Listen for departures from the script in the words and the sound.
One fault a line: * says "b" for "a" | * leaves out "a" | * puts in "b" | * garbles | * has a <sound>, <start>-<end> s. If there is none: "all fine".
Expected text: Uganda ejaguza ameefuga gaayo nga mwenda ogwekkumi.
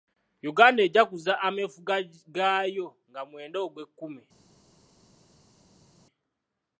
all fine